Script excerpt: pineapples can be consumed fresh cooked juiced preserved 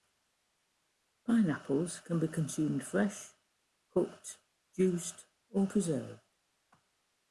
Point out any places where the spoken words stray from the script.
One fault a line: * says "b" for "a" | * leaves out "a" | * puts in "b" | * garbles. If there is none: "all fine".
* puts in "or"